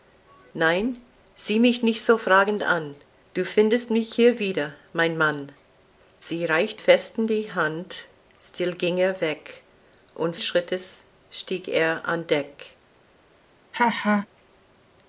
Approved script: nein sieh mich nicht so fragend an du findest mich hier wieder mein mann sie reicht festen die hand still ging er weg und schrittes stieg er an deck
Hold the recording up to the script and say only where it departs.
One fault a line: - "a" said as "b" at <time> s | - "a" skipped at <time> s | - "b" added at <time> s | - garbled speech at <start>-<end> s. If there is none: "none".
none